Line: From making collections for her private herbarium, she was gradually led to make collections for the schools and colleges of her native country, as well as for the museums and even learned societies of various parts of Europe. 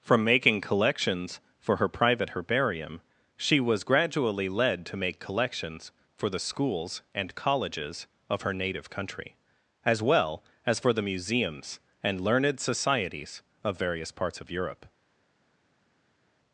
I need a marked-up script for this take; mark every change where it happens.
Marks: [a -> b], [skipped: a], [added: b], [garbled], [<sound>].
From making collections for her private herbarium, she was gradually led to make collections for the schools and colleges of her native country, as well as for the museums and [skipped: even] learned societies of various parts of Europe.